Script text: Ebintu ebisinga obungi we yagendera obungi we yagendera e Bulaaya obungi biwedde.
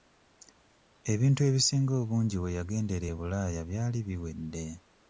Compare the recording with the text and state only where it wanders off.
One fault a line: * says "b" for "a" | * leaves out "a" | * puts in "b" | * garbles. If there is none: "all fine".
* leaves out "obungi we yagendera"
* says "byali" for "obungi"